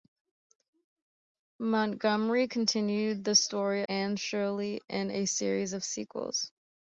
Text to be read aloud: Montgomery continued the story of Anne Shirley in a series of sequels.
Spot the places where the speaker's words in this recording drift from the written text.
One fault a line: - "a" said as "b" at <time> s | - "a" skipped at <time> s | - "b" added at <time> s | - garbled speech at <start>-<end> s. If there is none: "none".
- "of" skipped at 3.9 s